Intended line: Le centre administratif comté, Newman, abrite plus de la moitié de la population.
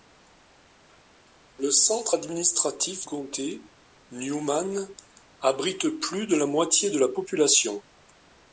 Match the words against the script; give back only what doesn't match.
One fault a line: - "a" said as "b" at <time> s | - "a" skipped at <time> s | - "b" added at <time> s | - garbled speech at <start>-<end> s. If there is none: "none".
none